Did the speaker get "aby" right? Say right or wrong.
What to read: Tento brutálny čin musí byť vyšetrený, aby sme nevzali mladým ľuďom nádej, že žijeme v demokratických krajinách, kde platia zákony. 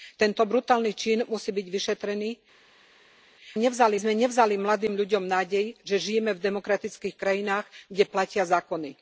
wrong